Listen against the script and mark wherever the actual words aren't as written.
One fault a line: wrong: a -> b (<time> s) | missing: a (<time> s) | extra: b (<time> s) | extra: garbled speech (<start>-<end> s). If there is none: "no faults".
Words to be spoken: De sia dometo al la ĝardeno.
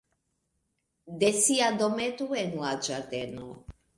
wrong: al -> en (2.4 s)